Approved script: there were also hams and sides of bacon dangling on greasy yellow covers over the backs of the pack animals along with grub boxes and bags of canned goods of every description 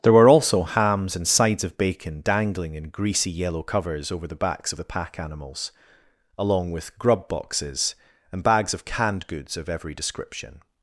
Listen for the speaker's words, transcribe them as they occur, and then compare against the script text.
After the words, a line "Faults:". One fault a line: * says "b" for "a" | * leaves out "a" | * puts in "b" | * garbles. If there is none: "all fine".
there were also hams and sides of bacon dangling in greasy yellow covers over the backs of the pack animals along with grub boxes and bags of canned goods of every description
Faults:
* says "in" for "on"